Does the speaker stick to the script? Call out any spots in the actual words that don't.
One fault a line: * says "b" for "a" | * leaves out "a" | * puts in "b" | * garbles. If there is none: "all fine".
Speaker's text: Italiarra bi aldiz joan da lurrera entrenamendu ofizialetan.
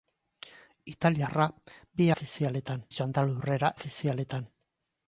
* says "ofizialetan" for "aldiz"
* leaves out "entrenamendu"